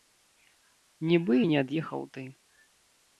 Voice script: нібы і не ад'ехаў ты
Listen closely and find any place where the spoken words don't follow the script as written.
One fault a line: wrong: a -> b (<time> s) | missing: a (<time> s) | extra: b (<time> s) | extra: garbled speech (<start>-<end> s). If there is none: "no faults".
no faults